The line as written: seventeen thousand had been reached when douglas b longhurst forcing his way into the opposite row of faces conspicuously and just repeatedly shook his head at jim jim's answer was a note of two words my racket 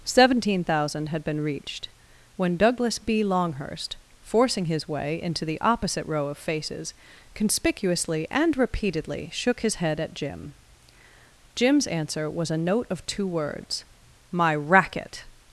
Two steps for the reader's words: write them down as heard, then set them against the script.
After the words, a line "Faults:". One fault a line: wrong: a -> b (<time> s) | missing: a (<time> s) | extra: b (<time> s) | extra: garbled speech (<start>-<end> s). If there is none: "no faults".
seventeen thousand had been reached when douglas b longhurst forcing his way into the opposite row of faces conspicuously and repeatedly shook his head at jim jim's answer was a note of two words my racket
Faults:
missing: just (8.6 s)